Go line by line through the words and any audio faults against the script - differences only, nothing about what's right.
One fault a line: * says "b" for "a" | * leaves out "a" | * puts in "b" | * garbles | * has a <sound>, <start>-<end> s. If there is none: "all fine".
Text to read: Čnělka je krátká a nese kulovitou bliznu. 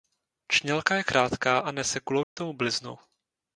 * has a dropout, 2.2-2.4 s